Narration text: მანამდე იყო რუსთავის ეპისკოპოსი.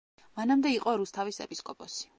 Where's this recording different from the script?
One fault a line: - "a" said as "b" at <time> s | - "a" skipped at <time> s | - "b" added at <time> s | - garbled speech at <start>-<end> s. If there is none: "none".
none